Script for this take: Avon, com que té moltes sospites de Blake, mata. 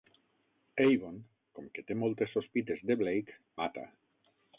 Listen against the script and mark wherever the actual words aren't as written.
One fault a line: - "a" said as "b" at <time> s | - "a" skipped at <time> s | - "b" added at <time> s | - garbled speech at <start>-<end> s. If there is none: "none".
none